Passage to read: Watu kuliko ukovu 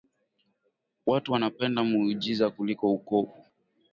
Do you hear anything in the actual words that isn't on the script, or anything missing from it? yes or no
yes